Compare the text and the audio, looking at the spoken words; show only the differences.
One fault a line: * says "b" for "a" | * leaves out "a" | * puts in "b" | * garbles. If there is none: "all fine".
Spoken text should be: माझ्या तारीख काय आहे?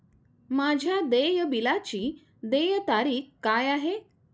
* puts in "देय बिलाची देय"